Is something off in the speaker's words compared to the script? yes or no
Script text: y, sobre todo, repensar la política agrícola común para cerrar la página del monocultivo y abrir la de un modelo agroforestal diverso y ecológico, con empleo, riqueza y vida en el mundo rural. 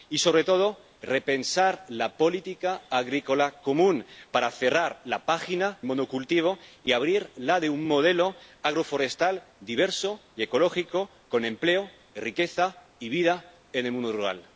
yes